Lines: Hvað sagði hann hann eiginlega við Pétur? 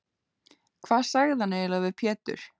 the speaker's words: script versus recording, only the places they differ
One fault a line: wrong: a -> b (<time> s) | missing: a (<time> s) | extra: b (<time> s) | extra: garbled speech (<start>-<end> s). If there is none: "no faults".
missing: hann (1.6 s)